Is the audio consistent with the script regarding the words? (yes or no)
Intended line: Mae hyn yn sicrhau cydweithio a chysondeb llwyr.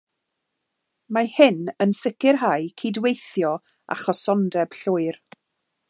yes